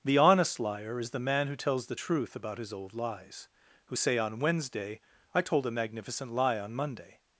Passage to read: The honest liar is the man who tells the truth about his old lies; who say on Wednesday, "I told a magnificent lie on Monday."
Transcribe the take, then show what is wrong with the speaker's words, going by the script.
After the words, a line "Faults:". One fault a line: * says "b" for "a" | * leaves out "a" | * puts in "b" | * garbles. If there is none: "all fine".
The honest liar is the man who tells the truth about his old lies; who say on Wednesday, "I told a magnificent lie on Monday."
Faults:
all fine